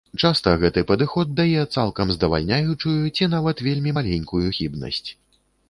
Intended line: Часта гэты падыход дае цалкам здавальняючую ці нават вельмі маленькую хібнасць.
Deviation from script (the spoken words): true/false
false